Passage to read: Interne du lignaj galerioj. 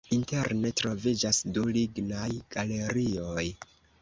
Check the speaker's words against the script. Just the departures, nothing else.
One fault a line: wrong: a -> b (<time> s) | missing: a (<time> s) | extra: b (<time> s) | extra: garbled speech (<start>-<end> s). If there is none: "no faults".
extra: troviĝas (0.8 s)